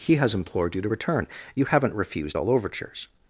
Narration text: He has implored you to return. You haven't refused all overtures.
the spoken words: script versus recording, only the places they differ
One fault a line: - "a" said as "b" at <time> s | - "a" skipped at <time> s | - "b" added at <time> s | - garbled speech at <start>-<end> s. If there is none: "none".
none